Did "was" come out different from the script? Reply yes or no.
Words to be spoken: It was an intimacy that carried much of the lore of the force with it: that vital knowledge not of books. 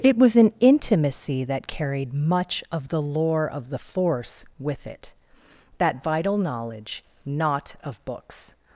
no